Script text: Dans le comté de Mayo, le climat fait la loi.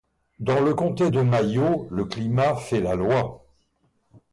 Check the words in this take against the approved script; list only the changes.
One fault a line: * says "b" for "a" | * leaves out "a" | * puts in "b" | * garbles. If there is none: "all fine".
all fine